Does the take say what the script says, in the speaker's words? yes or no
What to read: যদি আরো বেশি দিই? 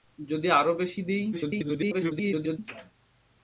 no